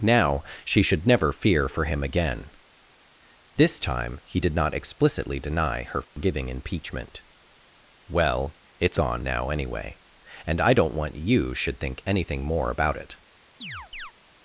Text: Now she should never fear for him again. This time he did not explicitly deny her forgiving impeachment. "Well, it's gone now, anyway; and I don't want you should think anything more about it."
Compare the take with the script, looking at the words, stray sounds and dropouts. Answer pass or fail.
fail